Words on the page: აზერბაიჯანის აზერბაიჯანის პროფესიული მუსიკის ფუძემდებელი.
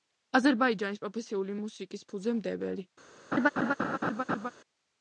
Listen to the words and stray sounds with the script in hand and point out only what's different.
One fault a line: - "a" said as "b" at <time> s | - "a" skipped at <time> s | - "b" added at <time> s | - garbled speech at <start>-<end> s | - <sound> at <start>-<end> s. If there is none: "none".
- "აზერბაიჯანის" skipped at 1.0 s
- laugh at 3.3-4.5 s